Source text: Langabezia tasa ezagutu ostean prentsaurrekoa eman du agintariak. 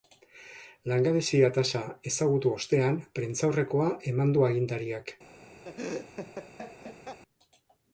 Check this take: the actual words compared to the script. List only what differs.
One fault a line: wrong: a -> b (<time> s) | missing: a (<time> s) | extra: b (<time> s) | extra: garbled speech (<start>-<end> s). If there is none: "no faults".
no faults